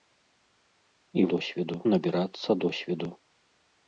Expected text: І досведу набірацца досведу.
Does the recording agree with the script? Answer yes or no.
yes